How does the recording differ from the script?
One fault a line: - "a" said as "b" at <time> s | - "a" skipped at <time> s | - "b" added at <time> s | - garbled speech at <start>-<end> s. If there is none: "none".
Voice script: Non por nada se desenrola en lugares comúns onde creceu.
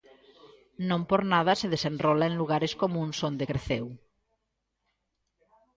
none